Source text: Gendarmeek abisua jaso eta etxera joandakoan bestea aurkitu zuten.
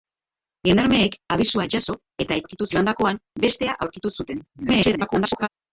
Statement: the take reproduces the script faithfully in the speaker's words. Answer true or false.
false